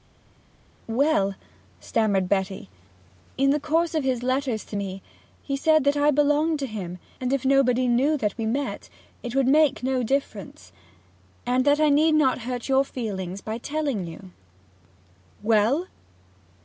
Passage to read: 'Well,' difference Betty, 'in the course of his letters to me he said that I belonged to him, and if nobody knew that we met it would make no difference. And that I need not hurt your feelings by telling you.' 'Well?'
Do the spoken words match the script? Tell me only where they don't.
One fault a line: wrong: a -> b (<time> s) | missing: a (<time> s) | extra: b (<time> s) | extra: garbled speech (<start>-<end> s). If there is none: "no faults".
wrong: difference -> stammered (1.8 s)